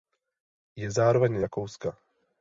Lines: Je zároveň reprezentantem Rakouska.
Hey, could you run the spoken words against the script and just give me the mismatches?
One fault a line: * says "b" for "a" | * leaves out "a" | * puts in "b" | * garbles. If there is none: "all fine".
* leaves out "reprezentantem"